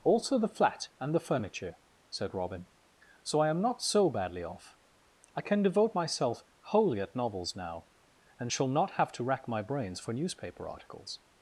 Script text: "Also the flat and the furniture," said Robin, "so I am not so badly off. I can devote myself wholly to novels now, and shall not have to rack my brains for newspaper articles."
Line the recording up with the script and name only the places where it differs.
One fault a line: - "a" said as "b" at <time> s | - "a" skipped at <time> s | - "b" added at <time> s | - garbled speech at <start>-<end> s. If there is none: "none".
- "to" said as "at" at 7.0 s